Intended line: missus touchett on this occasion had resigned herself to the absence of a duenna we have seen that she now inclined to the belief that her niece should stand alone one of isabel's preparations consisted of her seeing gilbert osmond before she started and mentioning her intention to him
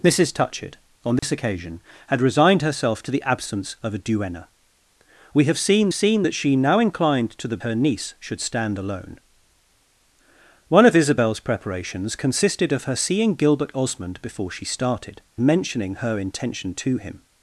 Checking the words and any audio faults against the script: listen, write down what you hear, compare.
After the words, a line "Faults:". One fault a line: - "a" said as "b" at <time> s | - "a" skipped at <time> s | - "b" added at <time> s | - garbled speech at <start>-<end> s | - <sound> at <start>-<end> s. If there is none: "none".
missus touchett on this occasion had resigned herself to the absence of a duenna we have seen seen that she now inclined to the her niece should stand alone one of isabel's preparations consisted of her seeing gilbert osmond before she started mentioning her intention to him
Faults:
- dropout at 1.2-1.2 s
- "seen" added at 5.9 s
- "belief that" skipped at 7.6 s
- "and" skipped at 15.2 s